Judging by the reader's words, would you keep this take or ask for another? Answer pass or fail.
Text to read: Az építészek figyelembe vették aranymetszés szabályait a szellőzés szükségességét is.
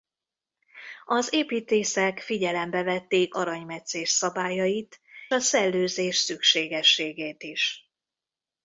pass